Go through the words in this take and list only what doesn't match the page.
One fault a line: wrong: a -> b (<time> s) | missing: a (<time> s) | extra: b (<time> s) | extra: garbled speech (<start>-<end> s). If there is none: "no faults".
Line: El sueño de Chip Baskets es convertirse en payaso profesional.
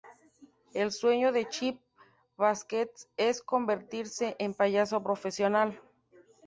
no faults